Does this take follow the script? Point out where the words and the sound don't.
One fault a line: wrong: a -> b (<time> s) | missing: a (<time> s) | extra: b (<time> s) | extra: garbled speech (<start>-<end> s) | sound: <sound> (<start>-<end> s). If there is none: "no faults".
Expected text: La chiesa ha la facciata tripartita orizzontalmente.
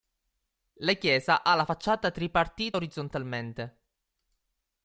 no faults